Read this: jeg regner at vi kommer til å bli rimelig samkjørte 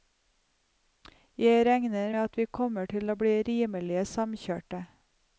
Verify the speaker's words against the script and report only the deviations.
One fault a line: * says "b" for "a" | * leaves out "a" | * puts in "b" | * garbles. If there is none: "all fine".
all fine